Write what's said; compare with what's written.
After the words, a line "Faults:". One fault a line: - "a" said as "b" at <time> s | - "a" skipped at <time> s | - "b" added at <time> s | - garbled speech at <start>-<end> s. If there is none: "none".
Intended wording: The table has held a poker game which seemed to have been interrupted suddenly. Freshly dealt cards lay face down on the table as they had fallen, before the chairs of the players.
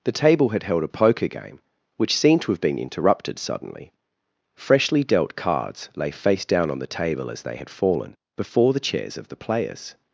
The table had held a poker game which seemed to have been interrupted suddenly. Freshly dealt cards lay face down on the table as they had fallen, before the chairs of the players.
Faults:
- "has" said as "had" at 0.5 s